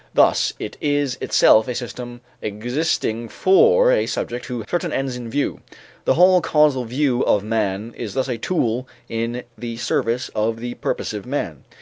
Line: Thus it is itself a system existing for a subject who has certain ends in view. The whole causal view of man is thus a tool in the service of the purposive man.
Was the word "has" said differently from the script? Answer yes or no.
yes